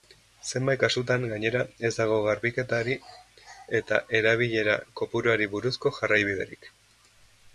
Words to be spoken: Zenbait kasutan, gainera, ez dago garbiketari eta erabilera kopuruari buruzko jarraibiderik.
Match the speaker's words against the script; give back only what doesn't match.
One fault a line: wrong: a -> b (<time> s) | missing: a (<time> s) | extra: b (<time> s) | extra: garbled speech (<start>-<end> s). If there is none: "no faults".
no faults